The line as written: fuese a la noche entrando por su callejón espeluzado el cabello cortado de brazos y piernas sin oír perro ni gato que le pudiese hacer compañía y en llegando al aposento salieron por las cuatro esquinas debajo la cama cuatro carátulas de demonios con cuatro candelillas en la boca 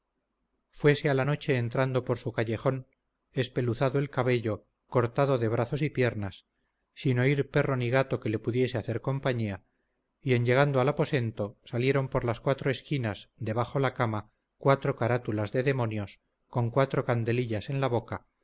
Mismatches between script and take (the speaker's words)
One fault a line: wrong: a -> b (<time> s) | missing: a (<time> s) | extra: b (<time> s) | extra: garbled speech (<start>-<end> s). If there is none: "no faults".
no faults